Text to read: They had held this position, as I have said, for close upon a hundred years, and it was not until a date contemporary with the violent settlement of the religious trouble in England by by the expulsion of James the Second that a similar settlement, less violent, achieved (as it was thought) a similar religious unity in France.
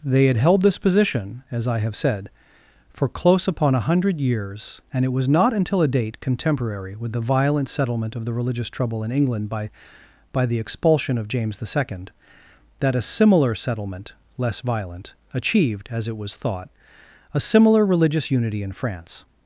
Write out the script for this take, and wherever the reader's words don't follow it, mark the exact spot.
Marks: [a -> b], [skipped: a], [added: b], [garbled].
They had held this position, as I have said, for close upon a hundred years, and it was not until a date contemporary with the violent settlement of the religious trouble in England by by the expulsion of James the Second that a similar settlement, less violent, achieved (as it was thought) a similar religious unity in France.